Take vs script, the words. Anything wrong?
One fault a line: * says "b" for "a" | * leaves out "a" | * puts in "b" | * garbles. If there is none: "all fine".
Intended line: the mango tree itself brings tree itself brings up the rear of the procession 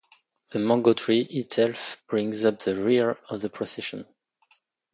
* leaves out "tree itself brings"